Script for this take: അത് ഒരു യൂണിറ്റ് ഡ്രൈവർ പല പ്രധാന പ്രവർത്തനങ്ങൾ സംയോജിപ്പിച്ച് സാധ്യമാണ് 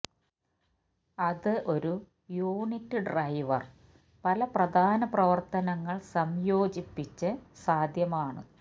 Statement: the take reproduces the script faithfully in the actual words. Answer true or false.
true